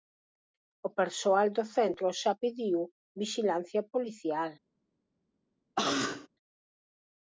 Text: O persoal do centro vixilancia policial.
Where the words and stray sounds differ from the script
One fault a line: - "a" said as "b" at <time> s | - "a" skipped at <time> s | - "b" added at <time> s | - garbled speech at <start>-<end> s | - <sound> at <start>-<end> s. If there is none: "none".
- "xa pediu" added at 2.2 s
- cough at 5.8-6.3 s